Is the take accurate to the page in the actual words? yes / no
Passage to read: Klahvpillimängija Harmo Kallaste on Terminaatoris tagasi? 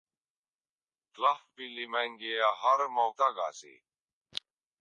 no